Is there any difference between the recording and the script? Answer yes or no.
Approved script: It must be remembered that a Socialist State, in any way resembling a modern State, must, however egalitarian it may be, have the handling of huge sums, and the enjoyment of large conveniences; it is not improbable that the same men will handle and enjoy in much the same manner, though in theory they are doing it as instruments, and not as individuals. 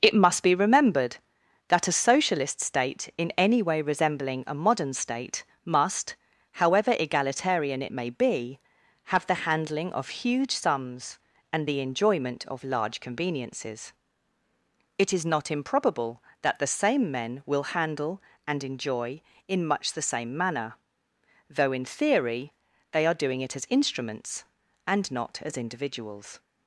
no